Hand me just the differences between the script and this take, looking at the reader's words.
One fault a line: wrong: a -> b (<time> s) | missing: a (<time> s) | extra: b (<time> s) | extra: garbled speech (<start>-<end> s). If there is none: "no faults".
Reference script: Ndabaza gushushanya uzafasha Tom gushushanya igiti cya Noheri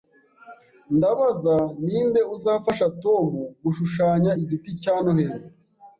wrong: gushushanya -> ninde (1.8 s)